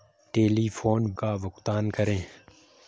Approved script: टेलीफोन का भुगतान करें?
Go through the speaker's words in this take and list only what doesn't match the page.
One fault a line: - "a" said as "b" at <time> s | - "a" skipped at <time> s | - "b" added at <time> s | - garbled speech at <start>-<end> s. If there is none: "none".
none